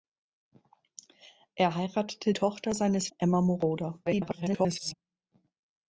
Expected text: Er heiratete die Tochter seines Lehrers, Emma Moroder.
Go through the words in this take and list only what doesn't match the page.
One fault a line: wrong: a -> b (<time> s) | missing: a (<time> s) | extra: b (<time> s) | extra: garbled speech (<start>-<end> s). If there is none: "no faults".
missing: die (2.3 s)
missing: Lehrers (3.1 s)
extra: garbled speech (4.1-4.9 s)